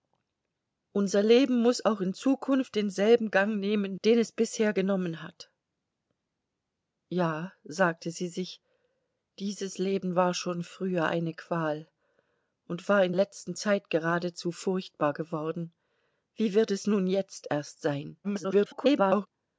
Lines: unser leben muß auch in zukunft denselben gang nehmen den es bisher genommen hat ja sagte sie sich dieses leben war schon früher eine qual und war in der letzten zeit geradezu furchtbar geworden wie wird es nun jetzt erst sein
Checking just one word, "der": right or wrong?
wrong